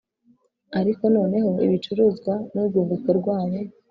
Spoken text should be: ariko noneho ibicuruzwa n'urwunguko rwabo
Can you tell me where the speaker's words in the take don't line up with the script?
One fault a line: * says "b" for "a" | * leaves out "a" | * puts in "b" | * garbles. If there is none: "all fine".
all fine